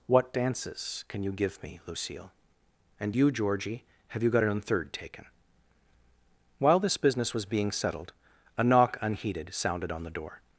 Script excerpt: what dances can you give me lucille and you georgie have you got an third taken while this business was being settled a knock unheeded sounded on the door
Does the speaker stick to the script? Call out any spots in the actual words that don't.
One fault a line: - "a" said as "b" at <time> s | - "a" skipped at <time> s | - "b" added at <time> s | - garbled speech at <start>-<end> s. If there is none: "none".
none